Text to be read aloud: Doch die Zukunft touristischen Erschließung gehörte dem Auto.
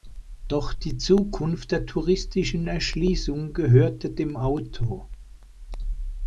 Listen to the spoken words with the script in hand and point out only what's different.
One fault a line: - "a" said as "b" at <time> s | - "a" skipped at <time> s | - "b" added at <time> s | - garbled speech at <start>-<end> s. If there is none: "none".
- "der" added at 1.7 s